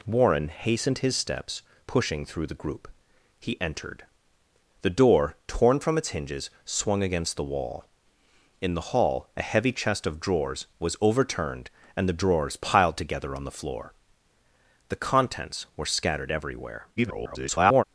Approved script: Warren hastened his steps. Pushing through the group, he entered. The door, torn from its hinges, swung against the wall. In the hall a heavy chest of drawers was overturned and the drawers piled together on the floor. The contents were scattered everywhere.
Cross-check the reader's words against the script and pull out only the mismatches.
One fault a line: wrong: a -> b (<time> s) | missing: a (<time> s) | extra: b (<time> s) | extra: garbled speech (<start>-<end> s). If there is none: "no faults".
extra: garbled speech (17.0-17.8 s)